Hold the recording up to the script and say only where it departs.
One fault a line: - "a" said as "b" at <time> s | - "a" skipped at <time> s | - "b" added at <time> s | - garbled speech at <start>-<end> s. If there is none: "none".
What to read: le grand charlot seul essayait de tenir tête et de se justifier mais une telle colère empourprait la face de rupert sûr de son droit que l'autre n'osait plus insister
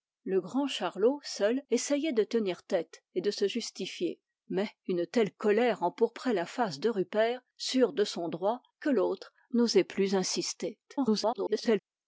- garbled speech at 10.9-11.8 s